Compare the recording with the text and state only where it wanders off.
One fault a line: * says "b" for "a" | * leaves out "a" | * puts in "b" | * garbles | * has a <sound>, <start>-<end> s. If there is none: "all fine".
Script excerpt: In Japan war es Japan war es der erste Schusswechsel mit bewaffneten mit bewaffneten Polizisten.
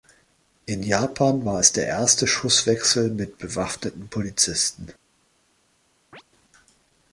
* leaves out "Japan war es"
* leaves out "mit bewaffneten"
* has a chirp, 6.1-6.2 s